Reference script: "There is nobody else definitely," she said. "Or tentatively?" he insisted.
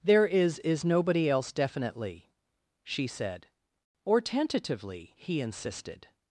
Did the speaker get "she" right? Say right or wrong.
right